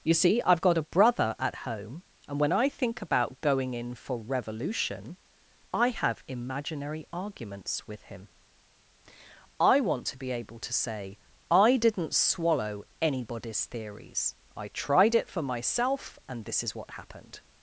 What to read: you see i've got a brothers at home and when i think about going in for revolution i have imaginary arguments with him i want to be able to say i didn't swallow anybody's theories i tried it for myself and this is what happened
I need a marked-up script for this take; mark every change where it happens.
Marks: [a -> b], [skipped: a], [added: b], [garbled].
you see i've got a [brothers -> brother] at home and when i think about going in for revolution i have imaginary arguments with him i want to be able to say i didn't swallow anybody's theories i tried it for myself and this is what happened